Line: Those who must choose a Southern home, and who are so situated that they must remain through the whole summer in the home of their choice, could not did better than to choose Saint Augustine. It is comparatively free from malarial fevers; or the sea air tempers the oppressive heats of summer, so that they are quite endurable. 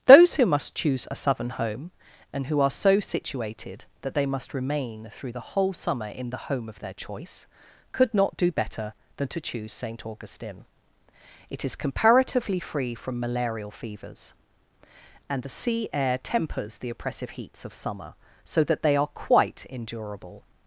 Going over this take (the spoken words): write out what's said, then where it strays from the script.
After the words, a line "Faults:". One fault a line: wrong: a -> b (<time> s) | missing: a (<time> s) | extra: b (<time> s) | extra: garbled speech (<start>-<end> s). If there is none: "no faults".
Those who must choose a Southern home, and who are so situated that they must remain through the whole summer in the home of their choice, could not do better than to choose Saint Augustine. It is comparatively free from malarial fevers; and the sea air tempers the oppressive heats of summer, so that they are quite endurable.
Faults:
wrong: did -> do (8.4 s)
wrong: or -> and (15.3 s)